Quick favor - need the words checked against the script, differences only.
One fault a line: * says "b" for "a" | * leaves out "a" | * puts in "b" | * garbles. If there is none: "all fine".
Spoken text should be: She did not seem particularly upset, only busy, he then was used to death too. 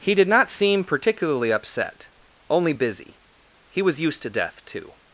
* says "He" for "She"
* leaves out "then"